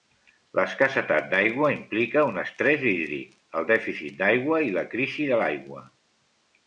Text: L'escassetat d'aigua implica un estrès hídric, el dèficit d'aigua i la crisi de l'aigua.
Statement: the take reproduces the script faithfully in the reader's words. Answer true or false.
true